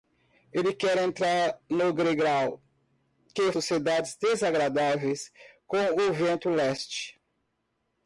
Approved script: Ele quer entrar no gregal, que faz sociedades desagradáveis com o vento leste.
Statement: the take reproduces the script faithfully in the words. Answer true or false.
false